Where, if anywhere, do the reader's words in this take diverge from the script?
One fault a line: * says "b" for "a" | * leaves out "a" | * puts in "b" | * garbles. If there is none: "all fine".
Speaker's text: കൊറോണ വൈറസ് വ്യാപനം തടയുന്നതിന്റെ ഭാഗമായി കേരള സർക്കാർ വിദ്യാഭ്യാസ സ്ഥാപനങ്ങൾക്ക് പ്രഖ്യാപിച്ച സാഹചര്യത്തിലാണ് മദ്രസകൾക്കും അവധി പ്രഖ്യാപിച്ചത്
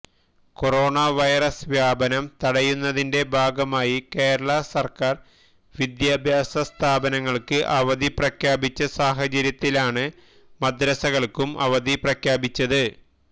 * puts in "അവധി"